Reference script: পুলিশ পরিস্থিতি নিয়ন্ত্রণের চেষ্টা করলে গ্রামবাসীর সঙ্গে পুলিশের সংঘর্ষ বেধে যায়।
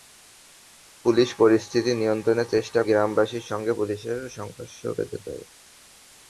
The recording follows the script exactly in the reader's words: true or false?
false